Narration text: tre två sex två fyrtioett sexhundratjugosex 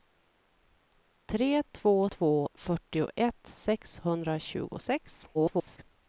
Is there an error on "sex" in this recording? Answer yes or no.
yes